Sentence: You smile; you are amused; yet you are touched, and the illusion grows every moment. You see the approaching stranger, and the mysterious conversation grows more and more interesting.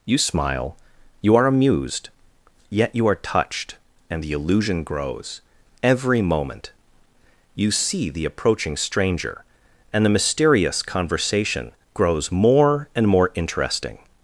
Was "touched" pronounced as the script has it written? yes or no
yes